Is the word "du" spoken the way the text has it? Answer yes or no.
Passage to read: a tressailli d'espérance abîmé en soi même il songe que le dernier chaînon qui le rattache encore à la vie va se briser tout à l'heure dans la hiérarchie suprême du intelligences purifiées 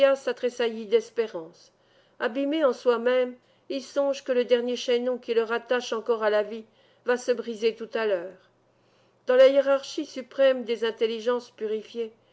no